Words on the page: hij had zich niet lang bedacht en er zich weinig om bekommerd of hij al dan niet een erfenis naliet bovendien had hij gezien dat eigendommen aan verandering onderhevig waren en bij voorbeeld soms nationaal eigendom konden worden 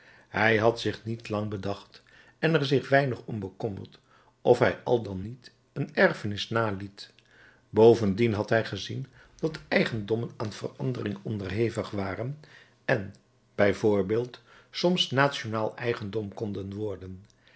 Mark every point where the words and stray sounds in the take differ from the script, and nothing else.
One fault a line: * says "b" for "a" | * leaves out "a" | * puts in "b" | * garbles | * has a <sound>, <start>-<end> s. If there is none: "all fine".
all fine